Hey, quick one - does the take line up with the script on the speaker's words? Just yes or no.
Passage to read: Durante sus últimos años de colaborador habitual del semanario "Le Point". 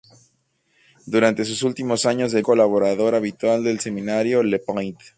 yes